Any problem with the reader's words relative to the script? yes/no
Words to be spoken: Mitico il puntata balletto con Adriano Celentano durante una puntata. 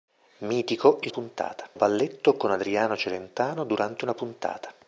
no